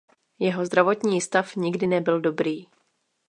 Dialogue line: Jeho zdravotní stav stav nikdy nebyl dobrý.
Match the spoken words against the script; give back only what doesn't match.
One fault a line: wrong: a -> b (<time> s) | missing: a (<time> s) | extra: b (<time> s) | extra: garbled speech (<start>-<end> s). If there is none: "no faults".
missing: stav (1.6 s)